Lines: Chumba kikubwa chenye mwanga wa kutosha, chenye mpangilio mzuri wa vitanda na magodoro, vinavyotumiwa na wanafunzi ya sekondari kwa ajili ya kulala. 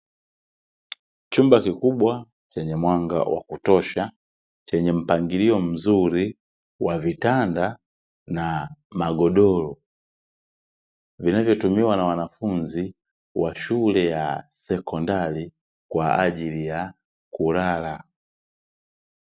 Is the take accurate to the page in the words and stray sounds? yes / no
no